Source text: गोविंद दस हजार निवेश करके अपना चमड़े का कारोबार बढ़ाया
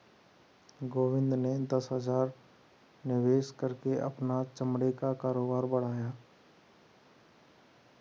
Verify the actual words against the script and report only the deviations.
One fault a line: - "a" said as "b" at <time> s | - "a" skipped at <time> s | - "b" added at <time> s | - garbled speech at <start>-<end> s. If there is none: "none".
- "ने" added at 1.4 s